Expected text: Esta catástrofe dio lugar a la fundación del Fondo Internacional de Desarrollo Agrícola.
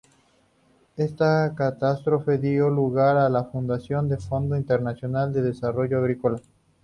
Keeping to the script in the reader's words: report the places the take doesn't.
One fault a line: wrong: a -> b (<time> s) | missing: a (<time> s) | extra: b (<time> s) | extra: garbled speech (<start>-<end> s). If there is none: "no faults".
no faults